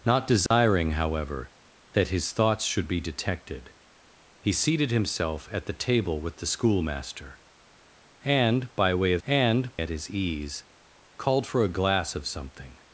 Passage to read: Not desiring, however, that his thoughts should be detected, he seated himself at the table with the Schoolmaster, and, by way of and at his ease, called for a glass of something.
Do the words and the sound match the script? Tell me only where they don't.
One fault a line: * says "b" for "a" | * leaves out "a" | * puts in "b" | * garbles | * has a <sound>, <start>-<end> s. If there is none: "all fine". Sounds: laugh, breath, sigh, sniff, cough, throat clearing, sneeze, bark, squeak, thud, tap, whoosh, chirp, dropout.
* has a dropout, 0.5-0.5 s